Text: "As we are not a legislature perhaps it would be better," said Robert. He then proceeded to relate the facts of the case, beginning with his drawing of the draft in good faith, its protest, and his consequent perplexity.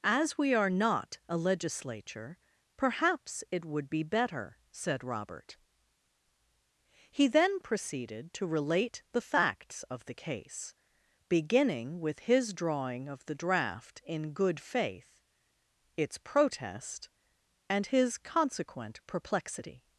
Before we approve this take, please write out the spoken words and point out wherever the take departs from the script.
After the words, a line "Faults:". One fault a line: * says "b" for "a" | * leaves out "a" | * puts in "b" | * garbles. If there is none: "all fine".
"As we are not a legislature perhaps it would be better," said Robert. He then proceeded to relate the facts of the case, beginning with his drawing of the draft in good faith, its protest, and his consequent perplexity.
Faults:
all fine